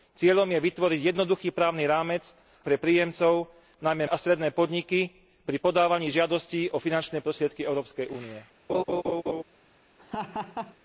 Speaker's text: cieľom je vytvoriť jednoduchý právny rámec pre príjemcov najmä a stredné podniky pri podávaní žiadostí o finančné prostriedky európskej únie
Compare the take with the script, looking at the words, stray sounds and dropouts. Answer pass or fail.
fail